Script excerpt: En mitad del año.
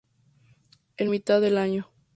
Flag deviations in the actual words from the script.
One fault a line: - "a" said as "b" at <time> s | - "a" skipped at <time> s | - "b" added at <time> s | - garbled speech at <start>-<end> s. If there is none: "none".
none